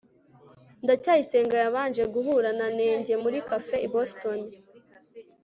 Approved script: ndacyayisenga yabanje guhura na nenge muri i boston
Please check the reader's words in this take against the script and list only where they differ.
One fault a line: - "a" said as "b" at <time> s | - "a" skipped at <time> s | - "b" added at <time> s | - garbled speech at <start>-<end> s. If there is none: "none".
- "cafe" added at 3.5 s